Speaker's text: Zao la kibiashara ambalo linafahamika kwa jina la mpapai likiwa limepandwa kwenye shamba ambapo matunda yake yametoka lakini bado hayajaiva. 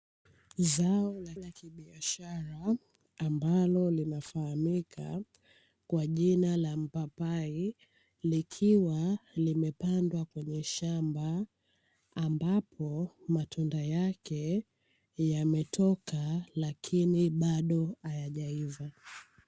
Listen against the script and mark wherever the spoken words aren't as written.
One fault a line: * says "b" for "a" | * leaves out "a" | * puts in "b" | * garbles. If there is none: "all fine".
* puts in "la"